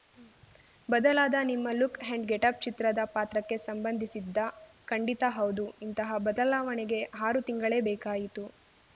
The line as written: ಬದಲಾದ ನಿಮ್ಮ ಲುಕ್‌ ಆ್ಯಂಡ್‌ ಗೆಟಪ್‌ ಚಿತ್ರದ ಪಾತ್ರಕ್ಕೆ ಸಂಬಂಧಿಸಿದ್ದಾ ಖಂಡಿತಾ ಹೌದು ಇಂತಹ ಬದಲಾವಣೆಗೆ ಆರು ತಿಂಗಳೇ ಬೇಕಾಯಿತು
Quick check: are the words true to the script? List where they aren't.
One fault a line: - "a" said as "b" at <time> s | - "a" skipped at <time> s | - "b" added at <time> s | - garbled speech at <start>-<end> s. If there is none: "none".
none